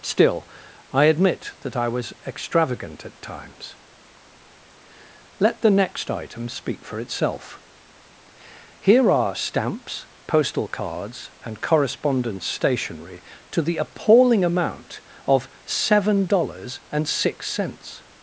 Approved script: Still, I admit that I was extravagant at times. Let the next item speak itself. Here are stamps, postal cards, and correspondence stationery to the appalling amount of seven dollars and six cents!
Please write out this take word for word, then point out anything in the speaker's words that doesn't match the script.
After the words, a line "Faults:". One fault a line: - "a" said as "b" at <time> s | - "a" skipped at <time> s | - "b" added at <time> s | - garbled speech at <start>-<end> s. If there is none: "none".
Still, I admit that I was extravagant at times. Let the next item speak for itself. Here are stamps, postal cards, and correspondence stationery to the appalling amount of seven dollars and six cents!
Faults:
- "for" added at 6.8 s